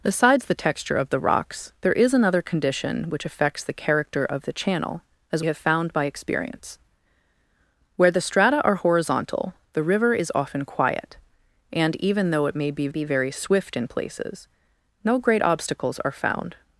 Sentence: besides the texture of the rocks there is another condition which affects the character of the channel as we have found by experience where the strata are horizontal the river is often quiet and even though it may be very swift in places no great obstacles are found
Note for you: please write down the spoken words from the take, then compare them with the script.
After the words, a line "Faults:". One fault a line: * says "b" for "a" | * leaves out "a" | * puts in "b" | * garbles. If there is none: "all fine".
besides the texture of the rocks there is another condition which affects the character of the channel as have found by experience where the strata are horizontal the river is often quiet and even though it may be be very swift in places no great obstacles are found
Faults:
* leaves out "we"
* puts in "be"